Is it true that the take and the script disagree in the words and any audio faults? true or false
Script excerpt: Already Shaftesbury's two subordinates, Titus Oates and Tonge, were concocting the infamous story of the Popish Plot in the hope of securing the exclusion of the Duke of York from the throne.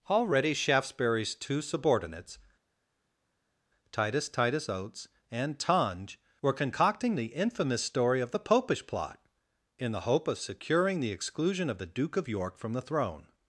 true